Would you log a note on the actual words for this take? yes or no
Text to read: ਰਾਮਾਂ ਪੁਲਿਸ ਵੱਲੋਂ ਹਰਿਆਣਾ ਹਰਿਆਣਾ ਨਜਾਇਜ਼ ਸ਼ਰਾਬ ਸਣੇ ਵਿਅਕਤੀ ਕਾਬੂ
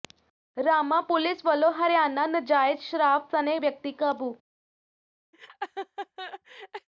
yes